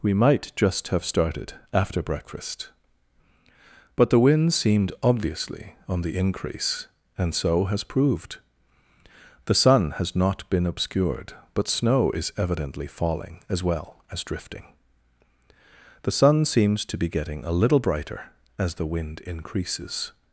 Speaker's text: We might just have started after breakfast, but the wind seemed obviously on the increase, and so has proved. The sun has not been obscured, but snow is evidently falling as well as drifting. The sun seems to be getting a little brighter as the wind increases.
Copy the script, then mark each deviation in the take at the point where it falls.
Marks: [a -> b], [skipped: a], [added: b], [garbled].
We might just have started after breakfast, but the wind seemed obviously on the increase, and so has proved. The sun has not been obscured, but snow is evidently falling as well as drifting. The sun seems to be getting a little brighter as the wind increases.